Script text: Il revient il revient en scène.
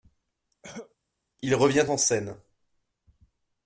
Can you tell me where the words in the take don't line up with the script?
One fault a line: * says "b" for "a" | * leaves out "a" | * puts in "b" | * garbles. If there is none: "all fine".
* leaves out "il revient"